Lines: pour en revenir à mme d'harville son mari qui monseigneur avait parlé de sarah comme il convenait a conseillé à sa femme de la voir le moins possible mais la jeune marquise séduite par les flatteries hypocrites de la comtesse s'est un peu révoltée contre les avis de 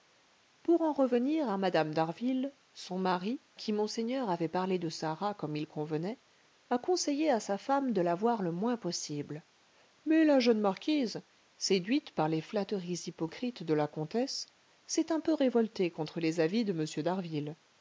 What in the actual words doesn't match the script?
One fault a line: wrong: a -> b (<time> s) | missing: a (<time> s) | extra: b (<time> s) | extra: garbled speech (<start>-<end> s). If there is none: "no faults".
no faults